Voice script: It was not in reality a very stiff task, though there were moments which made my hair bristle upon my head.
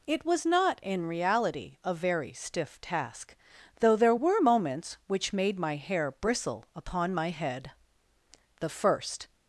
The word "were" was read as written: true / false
true